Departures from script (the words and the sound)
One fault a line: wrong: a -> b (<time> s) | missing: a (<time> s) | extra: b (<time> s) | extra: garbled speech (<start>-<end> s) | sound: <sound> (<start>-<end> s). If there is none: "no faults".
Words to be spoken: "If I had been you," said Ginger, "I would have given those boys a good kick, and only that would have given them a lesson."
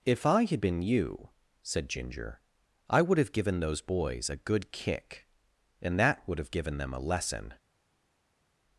missing: only (6.0 s)